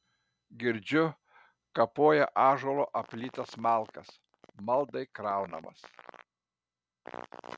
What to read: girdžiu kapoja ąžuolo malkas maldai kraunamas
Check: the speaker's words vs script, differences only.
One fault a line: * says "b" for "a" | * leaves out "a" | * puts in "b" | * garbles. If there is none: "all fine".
* puts in "aplytas"